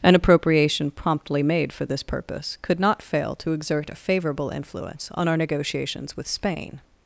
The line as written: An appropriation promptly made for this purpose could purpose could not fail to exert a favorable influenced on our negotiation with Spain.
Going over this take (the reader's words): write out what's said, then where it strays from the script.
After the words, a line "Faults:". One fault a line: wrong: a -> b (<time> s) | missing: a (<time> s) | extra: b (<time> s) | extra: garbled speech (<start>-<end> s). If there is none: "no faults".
An appropriation promptly made for this purpose could not fail to exert a favorable influence on our negotiations with Spain.
Faults:
missing: purpose could (2.8 s)
wrong: influenced -> influence (4.5 s)
wrong: negotiation -> negotiations (5.4 s)